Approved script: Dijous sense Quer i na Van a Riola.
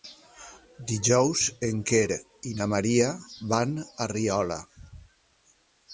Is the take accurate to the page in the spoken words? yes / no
no